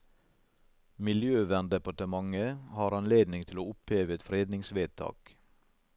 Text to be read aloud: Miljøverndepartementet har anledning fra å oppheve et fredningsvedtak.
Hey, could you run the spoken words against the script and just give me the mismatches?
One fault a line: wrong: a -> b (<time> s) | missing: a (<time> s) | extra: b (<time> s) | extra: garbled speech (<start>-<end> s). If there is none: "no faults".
wrong: fra -> til (3.5 s)